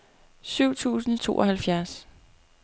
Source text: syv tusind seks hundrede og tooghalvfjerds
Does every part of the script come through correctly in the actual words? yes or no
no